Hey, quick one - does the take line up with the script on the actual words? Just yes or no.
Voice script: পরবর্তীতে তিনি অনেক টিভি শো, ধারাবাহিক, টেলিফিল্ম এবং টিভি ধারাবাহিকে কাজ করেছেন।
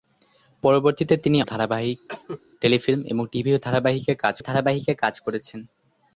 no